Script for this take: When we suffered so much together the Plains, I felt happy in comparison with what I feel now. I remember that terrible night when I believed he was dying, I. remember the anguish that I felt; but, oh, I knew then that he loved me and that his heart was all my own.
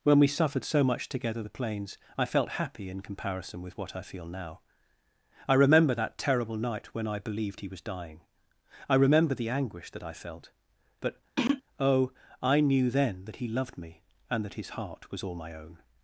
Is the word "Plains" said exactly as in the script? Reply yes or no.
yes